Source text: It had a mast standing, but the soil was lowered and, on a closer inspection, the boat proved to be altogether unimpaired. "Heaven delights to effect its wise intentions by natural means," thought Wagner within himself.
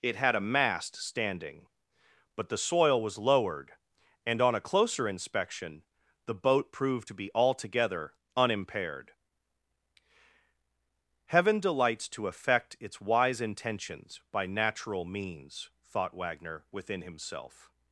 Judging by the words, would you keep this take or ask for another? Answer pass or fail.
pass